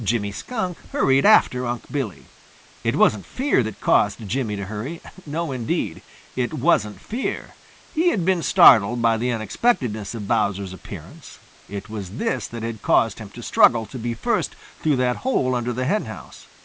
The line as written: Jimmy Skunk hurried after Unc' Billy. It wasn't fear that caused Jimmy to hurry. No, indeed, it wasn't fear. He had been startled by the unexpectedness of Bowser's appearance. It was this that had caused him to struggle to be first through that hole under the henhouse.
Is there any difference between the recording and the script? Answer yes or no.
no